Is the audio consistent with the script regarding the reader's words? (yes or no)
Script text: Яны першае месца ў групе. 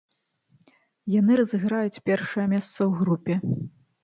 no